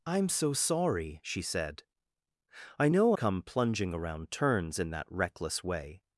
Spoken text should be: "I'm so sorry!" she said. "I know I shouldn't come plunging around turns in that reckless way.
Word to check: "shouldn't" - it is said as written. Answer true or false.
false